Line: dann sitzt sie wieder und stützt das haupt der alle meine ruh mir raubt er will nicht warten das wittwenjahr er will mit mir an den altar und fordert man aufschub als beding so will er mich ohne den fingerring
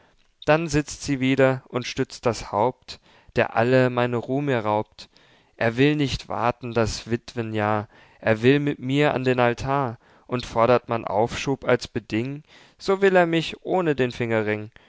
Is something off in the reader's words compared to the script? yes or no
no